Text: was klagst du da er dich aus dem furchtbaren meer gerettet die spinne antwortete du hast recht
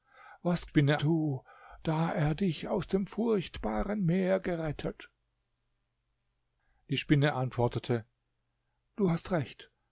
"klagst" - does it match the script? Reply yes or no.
no